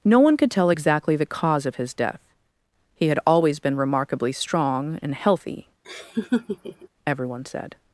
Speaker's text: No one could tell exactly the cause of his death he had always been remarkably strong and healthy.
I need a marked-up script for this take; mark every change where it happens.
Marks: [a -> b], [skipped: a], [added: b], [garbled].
No one could tell exactly the cause of his death he had always been remarkably strong and healthy. [added: Everyone said]